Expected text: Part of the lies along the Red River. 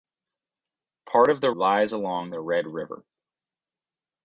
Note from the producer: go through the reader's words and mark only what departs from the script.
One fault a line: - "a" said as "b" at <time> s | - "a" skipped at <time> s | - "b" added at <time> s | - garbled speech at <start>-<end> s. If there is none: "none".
none